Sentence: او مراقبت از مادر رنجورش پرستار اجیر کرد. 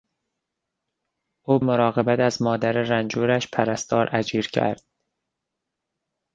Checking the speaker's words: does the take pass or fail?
pass